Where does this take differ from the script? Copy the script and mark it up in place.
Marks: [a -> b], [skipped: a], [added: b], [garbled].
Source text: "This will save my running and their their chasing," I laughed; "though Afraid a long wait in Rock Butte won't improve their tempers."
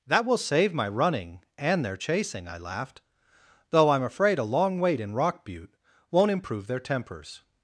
["This -> That] will save my running and their [skipped: their] chasing," I laughed; "though [added: I'm] Afraid a long wait in Rock Butte won't improve their tempers."